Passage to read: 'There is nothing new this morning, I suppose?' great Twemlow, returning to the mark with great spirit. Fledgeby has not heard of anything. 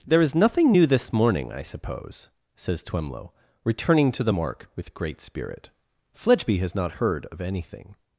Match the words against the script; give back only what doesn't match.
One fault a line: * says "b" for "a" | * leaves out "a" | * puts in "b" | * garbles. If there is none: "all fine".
* says "says" for "great"